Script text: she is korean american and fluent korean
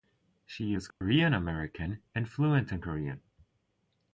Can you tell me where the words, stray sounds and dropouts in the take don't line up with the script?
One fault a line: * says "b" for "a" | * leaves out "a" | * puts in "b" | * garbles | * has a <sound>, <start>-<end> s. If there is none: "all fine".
* has a dropout, 0.9-1.0 s
* puts in "in"